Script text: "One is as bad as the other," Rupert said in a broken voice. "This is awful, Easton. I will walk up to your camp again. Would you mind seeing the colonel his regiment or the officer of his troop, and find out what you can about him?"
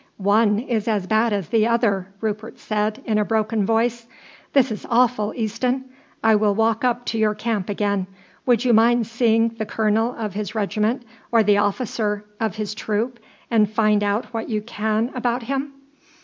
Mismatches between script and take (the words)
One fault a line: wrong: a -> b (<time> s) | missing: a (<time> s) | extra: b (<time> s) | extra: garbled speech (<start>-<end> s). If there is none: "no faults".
extra: of (10.2 s)